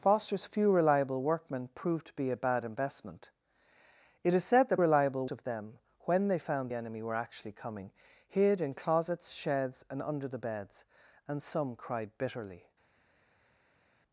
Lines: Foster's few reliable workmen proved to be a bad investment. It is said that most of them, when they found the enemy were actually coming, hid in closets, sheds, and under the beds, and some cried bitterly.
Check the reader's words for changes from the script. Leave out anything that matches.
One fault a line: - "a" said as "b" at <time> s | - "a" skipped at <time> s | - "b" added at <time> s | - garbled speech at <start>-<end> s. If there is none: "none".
- "most" said as "reliable" at 4.8 s
- "the" skipped at 6.7 s